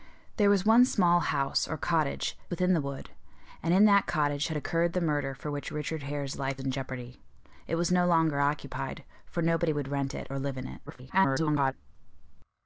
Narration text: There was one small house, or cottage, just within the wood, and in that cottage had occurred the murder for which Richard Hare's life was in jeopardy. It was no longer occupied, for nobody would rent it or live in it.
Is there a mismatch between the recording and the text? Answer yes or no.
yes